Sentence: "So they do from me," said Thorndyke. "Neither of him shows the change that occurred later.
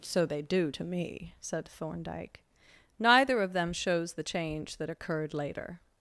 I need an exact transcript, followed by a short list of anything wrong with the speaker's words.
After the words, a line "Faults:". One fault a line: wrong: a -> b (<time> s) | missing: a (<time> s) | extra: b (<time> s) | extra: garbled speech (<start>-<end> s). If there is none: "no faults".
"So they do to me," said Thorndyke. "Neither of them shows the change that occurred later.
Faults:
wrong: from -> to (0.7 s)
wrong: him -> them (3.5 s)